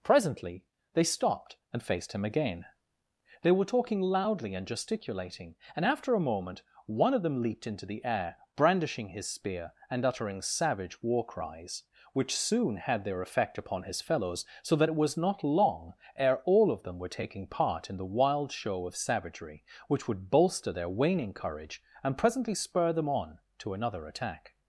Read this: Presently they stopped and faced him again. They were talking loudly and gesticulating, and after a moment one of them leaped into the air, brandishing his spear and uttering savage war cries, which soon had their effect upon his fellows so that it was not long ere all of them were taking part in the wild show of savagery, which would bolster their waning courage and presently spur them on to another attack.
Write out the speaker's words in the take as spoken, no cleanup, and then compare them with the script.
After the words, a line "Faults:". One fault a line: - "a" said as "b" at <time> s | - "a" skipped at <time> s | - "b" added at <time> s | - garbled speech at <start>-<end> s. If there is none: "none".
Presently they stopped and faced him again. They were talking loudly and gesticulating, and after a moment one of them leaped into the air, brandishing his spear and uttering savage war cries, which soon had their effect upon his fellows so that it was not long ere all of them were taking part in the wild show of savagery, which would bolster their waning courage and presently spur them on to another attack.
Faults:
none